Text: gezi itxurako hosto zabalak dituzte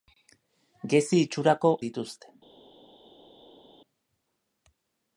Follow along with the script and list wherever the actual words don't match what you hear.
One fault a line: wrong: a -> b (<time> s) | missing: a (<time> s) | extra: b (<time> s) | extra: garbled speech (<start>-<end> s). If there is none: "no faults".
missing: hosto zabalak (1.7 s)